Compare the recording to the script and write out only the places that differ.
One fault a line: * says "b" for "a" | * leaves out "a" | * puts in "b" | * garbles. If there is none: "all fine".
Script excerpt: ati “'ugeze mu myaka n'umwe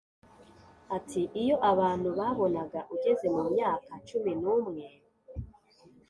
* puts in "iyo abantu babonaga"
* puts in "cumi"